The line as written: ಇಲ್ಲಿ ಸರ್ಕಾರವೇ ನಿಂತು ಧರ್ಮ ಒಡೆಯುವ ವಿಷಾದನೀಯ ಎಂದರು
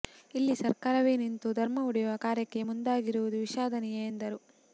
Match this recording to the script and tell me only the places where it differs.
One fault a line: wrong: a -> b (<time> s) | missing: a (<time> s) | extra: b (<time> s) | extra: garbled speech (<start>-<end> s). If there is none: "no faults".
extra: ಕಾರ್ಯಕ್ಕೆ ಮುಂದಾಗಿರುವುದು (2.2 s)